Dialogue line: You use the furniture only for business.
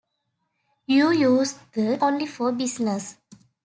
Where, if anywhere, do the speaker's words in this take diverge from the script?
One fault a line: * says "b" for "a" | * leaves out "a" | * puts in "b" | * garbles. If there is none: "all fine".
* leaves out "furniture"